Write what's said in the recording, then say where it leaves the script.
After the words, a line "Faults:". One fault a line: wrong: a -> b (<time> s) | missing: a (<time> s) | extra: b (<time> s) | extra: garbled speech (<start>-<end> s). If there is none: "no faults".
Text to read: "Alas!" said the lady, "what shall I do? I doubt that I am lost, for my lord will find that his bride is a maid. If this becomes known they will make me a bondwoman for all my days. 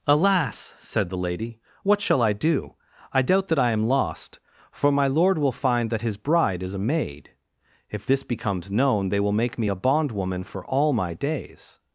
"Alas!" said the lady, "what shall I do? I doubt that I am lost, for my lord will find that his bride is a maid. If this becomes known they will make me a bondwoman for all my days.
Faults:
no faults